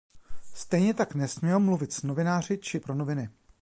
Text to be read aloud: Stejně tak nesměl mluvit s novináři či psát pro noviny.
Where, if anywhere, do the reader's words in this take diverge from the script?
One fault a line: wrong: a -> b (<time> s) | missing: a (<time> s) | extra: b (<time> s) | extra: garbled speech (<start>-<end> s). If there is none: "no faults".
missing: psát (2.8 s)